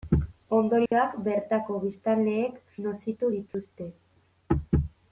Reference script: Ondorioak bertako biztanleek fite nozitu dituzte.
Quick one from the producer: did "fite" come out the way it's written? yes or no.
no